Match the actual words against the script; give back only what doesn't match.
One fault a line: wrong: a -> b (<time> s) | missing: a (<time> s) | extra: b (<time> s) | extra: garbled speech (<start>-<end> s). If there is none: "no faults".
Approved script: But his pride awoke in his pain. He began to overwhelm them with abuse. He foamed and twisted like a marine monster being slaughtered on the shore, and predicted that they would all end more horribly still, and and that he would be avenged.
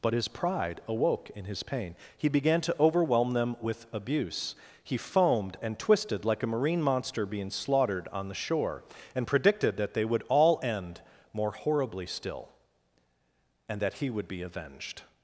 missing: and (13.8 s)